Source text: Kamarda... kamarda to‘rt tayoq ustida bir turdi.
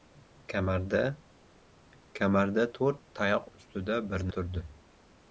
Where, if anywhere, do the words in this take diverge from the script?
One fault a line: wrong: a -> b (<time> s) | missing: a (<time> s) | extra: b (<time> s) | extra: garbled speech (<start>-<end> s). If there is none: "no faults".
no faults